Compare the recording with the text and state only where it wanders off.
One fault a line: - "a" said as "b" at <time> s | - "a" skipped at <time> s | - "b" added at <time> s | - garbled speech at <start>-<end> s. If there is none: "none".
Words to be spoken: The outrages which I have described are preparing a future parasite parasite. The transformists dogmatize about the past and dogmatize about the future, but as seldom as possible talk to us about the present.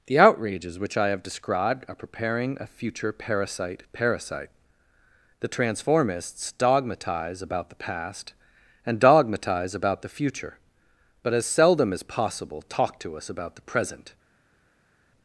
none